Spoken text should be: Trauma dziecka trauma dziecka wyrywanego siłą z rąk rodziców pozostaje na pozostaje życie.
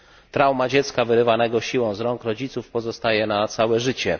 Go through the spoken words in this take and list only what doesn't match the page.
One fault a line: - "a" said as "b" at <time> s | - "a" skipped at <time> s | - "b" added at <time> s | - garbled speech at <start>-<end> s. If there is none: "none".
- "trauma dziecka" skipped at 1.1 s
- "pozostaje" said as "całe" at 3.5 s